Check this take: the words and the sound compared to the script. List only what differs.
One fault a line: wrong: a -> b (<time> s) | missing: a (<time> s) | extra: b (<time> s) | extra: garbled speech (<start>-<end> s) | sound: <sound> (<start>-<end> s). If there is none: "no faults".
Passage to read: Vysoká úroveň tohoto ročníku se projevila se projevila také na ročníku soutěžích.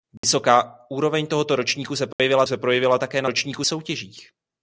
sound: dropout (0.2-0.2 s)
sound: dropout (2.1-2.2 s)